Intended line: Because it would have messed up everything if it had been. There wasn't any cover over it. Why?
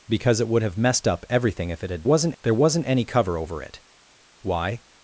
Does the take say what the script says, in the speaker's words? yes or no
no